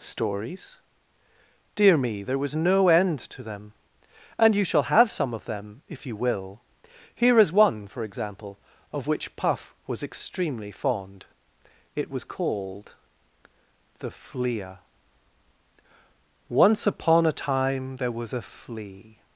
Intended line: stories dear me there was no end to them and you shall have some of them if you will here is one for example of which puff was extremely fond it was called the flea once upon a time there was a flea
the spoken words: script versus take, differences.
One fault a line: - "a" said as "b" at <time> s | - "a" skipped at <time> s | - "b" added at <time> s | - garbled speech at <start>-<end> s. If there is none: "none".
none